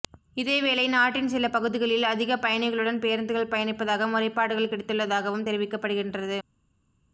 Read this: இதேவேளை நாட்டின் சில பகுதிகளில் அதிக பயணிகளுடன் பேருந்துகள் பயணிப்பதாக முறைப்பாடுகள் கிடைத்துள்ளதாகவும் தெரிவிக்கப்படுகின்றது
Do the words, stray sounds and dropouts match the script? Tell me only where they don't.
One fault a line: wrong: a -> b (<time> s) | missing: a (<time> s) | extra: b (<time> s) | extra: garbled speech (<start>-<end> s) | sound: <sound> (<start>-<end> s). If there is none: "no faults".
no faults